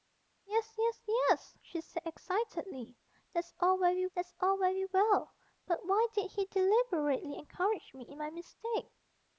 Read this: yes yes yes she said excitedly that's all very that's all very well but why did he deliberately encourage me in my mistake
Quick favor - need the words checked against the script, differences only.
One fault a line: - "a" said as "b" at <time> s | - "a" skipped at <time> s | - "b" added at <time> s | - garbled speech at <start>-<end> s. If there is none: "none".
none